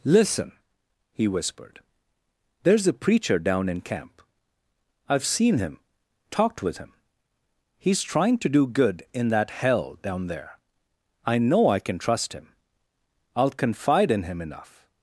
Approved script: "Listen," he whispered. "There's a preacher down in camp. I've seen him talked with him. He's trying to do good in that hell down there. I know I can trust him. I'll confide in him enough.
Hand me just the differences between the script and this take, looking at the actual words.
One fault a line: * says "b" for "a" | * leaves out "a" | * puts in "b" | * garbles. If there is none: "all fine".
all fine